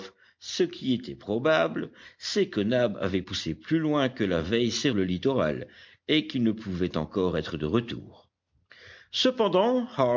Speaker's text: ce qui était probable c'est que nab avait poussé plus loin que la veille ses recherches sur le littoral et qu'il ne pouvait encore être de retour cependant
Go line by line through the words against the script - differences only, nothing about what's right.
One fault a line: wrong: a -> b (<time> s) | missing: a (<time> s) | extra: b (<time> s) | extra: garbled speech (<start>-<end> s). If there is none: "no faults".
missing: recherches sur (4.9 s)